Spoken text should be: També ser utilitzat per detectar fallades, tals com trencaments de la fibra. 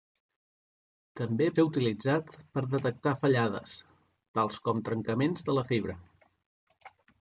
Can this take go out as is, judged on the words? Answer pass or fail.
pass